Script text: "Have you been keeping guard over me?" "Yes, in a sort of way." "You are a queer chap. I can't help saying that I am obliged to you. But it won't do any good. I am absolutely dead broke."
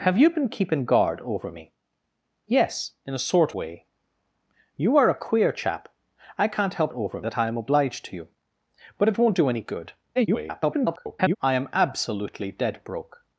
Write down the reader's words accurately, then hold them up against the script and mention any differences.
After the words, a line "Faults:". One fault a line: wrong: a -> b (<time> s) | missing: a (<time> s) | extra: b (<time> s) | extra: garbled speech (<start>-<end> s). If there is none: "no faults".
"Have you been keeping guard over me?" "Yes, in a sort way." "You are a queer chap. I can't help over that I am obliged to you. But it won't do any good. [garbled] I am absolutely dead broke."
Faults:
missing: of (3.5 s)
wrong: saying -> over (6.9 s)
extra: garbled speech (10.2-11.4 s)